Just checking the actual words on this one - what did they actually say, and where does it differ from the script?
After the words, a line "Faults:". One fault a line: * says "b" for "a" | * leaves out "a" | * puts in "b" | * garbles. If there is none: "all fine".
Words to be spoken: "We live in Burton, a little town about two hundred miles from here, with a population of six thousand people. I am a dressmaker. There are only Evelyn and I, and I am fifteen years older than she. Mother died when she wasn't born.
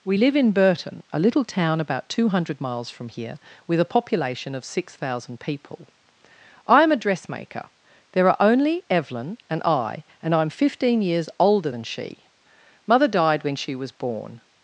"We live in Burton, a little town about two hundred miles from here, with a population of six thousand people. I am a dressmaker. There are only Evelyn and I, and I am fifteen years older than she. Mother died when she was born.
Faults:
* says "was" for "wasn't"